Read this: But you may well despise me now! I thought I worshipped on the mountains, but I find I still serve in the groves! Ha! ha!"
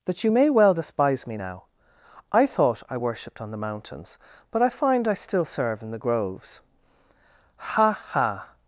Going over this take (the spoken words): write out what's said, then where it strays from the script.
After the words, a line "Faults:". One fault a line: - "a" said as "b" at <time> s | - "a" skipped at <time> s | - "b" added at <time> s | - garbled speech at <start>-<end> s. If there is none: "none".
That you may well despise me now! I thought I worshipped on the mountains, but I find I still serve in the groves! Ha! ha!"
Faults:
- "But" said as "That" at 0.1 s